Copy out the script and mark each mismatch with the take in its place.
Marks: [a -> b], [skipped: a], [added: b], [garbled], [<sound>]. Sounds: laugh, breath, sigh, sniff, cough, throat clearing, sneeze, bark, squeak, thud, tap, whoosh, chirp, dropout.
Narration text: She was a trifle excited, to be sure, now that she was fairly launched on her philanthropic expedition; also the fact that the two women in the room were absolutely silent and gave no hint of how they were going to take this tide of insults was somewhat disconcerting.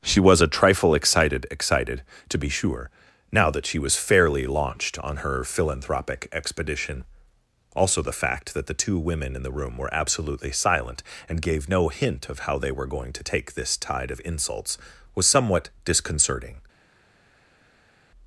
She was a trifle excited, [added: excited] to be sure, now that she was fairly launched on her philanthropic expedition; also the fact that the two women in the room were absolutely silent and gave no hint of how they were going to take this tide of insults was somewhat disconcerting.